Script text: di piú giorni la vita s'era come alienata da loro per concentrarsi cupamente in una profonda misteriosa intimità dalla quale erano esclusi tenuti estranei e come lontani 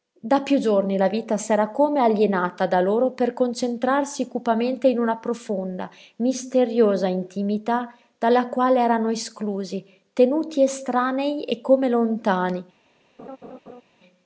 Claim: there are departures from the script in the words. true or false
true